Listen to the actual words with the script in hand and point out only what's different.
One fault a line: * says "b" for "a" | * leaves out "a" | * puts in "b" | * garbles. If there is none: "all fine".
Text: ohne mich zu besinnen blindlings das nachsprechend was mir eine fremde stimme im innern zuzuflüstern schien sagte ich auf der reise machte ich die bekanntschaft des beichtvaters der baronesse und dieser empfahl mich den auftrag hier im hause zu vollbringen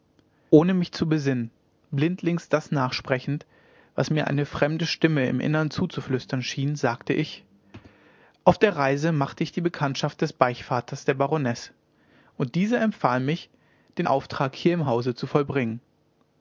all fine